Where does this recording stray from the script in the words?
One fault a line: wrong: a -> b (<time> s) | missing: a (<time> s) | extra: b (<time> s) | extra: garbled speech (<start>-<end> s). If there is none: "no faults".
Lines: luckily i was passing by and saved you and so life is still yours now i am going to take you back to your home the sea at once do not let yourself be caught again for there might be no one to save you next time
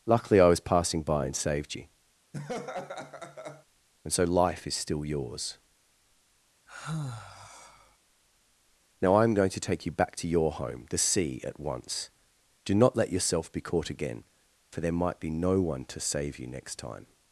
no faults